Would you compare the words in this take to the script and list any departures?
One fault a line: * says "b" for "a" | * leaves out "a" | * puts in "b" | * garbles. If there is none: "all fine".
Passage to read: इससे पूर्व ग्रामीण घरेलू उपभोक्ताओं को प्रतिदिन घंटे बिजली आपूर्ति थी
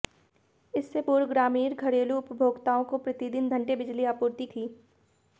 all fine